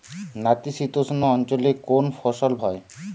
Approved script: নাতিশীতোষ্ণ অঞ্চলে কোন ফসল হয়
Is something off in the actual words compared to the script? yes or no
no